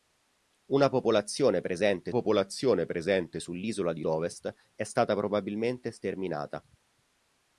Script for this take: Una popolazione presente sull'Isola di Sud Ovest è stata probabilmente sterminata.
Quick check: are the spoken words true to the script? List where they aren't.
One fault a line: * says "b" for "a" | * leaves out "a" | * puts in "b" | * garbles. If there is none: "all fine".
* puts in "popolazione presente"
* leaves out "Sud"